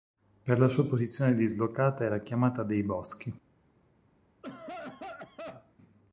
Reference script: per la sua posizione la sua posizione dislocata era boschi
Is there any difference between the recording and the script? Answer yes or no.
yes